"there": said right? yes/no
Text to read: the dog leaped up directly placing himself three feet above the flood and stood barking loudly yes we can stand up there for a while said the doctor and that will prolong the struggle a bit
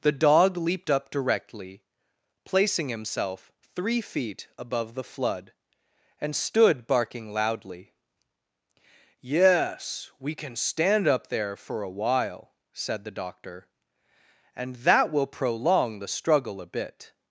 yes